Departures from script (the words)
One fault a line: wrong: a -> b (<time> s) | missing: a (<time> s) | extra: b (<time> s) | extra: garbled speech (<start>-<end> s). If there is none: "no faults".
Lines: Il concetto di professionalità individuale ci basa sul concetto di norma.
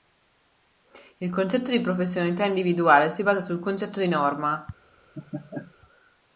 wrong: ci -> si (3.1 s)